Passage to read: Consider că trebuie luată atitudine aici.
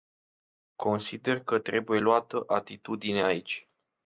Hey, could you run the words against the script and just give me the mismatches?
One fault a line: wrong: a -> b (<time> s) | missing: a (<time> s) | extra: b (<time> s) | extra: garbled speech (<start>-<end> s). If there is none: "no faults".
no faults